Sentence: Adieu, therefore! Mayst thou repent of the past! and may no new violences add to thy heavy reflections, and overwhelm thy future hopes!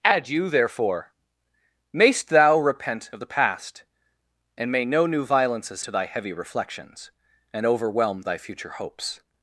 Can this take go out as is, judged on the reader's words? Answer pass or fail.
fail